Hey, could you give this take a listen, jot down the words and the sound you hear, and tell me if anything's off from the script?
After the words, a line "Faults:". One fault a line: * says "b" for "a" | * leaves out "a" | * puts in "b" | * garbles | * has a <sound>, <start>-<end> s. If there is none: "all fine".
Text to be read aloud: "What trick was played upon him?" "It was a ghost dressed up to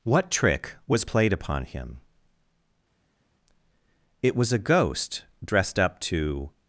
"What trick was played upon him?" "It was a ghost dressed up to
Faults:
all fine